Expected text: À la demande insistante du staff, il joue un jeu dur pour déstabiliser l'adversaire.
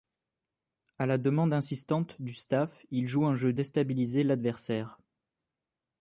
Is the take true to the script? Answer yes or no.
no